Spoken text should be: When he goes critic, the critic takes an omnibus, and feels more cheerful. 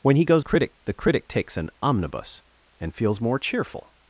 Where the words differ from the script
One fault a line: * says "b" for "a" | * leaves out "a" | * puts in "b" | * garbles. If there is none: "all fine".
all fine